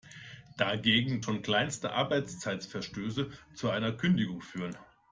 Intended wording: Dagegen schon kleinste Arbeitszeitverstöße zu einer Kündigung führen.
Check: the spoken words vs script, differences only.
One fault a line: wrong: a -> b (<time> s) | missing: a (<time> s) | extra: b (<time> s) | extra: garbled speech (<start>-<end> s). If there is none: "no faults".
no faults